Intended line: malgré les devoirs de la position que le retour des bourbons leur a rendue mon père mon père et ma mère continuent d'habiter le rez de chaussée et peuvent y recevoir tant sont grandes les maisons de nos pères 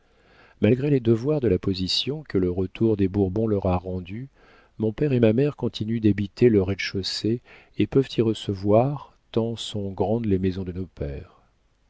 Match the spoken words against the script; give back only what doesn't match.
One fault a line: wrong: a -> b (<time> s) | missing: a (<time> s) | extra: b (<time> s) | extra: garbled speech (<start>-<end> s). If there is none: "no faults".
missing: mon père (5.1 s)